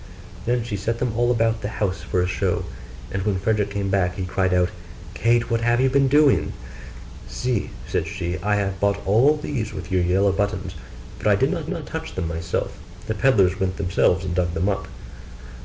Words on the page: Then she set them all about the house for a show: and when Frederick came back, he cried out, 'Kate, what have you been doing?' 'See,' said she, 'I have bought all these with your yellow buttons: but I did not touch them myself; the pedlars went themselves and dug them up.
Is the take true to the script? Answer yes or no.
no